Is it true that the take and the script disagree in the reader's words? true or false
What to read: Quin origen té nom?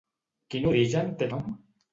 false